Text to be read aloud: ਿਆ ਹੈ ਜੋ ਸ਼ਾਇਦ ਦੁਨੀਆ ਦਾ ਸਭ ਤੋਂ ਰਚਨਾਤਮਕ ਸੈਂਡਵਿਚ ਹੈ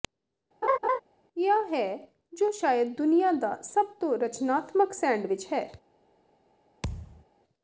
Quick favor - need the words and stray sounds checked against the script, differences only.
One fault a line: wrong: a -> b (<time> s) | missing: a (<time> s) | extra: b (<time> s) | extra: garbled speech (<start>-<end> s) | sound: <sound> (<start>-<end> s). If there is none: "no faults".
sound: laugh (0.6-1.0 s)
sound: thud (6.8-7.2 s)